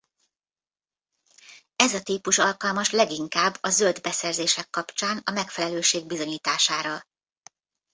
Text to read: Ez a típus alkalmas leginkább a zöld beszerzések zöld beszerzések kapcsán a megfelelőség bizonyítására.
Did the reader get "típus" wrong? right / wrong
right